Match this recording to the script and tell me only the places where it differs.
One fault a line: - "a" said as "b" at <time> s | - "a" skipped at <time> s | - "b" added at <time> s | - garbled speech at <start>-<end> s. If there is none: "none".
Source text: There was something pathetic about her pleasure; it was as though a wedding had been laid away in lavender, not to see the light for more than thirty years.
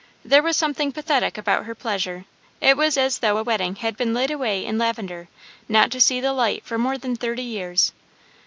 none